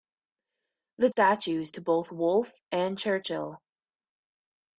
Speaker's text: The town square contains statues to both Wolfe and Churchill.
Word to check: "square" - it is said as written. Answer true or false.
false